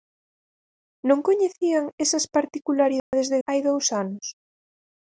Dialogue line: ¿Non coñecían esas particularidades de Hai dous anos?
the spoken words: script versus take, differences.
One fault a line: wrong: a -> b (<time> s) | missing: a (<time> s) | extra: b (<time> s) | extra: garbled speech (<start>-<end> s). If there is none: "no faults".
no faults